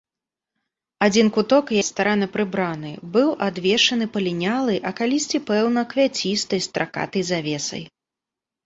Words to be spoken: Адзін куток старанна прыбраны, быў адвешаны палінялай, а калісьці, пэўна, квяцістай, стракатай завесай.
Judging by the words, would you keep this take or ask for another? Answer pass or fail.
pass